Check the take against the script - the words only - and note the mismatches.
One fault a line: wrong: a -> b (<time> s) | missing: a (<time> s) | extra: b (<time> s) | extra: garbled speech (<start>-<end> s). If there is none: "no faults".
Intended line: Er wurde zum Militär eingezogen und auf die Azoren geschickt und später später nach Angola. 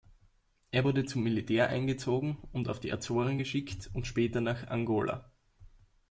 missing: später (4.4 s)